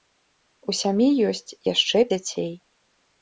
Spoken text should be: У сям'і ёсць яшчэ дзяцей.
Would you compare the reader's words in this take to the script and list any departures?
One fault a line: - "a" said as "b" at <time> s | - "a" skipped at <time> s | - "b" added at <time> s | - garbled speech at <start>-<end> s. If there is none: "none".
none